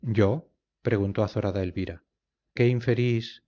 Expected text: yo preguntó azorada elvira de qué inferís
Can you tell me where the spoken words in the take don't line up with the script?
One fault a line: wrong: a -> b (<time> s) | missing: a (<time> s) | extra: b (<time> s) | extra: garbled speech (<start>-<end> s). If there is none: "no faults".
missing: de (2.0 s)